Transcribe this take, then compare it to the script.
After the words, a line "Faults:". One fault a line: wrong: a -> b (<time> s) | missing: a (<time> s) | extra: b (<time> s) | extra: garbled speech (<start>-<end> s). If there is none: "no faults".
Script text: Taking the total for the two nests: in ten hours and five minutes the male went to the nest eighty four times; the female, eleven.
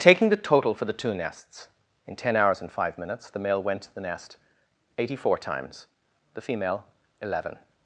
Taking the total for the two nests: in ten hours and five minutes the male went to the nest eighty four times; the female, eleven.
Faults:
no faults